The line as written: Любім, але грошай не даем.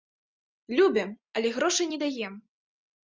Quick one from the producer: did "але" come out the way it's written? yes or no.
yes